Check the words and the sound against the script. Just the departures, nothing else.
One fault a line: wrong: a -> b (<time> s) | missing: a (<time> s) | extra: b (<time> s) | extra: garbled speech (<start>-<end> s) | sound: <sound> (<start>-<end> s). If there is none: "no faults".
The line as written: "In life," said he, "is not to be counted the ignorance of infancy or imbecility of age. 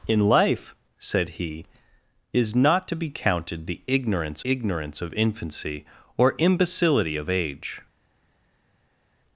extra: ignorance (4.4 s)